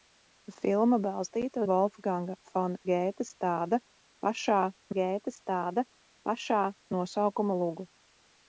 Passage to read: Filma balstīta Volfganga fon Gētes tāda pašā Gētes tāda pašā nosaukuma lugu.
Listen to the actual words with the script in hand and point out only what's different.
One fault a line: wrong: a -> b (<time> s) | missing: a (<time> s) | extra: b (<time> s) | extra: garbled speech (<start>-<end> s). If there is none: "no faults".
no faults